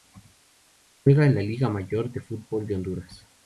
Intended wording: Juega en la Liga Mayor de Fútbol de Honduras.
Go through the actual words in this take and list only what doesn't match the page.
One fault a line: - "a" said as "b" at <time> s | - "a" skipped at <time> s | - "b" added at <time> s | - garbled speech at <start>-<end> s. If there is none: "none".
none